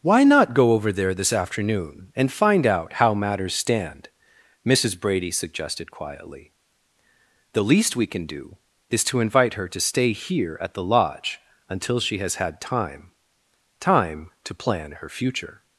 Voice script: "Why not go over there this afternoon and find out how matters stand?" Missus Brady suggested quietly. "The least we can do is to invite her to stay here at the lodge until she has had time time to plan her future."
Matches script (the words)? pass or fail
pass